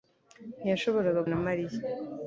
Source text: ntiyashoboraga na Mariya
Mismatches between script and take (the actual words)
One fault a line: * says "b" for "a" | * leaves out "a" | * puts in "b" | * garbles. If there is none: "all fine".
all fine